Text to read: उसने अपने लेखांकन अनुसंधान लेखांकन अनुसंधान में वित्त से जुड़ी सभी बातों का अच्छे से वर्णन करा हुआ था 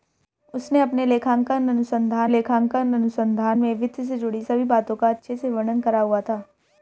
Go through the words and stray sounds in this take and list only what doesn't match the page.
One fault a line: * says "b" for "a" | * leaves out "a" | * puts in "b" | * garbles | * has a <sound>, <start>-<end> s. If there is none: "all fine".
all fine